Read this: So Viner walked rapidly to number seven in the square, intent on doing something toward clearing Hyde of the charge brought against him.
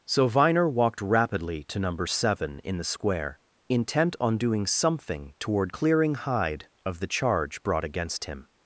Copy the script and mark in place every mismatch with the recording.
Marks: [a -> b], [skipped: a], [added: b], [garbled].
So Viner walked rapidly to number seven in the square, intent on doing something toward clearing Hyde of the charge brought against him.